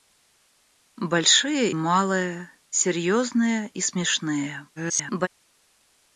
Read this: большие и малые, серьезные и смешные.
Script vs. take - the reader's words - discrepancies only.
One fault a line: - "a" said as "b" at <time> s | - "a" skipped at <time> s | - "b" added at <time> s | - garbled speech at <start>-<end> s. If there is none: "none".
- "и" skipped at 1.7 s
- garbled speech at 4.8-5.3 s